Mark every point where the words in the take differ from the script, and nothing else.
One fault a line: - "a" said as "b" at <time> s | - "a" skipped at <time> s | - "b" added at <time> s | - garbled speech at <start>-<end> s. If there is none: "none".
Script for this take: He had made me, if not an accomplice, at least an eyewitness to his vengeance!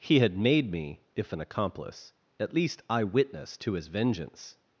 - "not" skipped at 1.3 s
- "an" skipped at 2.8 s